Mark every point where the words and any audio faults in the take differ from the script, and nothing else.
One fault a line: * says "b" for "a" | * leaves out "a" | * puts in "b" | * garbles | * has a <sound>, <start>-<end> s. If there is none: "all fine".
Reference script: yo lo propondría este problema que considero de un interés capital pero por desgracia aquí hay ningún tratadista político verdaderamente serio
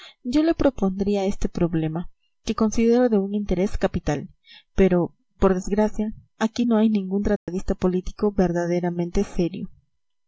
* says "le" for "lo"
* puts in "no"
* has a dropout, 7.4-7.5 s